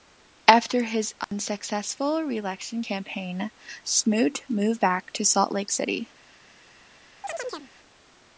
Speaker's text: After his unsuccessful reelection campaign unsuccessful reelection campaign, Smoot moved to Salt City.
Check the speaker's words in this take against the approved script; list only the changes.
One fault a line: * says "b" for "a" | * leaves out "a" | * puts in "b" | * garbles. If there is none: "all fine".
* leaves out "unsuccessful reelection campaign"
* puts in "back"
* puts in "Lake"